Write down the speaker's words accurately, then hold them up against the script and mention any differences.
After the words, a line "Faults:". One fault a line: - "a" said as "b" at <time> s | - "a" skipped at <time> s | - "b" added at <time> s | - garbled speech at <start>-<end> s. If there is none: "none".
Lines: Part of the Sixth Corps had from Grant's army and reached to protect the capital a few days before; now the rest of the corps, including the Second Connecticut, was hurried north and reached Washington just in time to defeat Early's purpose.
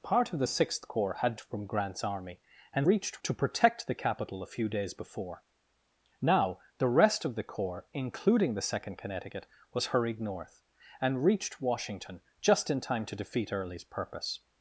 Part of the Sixth Corps had from Grant's army and reached to protect the capital a few days before; now the rest of the corps, including the Second Connecticut, was hurried north and reached Washington just in time to defeat Early's purpose.
Faults:
none